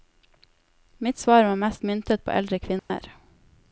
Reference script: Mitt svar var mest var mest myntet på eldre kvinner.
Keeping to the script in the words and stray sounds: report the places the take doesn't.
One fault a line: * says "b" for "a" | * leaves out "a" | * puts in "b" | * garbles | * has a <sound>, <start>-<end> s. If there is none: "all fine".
* leaves out "var mest"
* has a dropout, 2.8-2.9 s